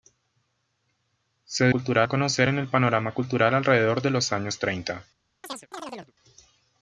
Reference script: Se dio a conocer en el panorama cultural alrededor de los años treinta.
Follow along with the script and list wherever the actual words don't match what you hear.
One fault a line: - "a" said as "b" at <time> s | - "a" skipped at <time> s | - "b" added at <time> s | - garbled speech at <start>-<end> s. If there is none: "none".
- "dio" said as "cultural" at 1.7 s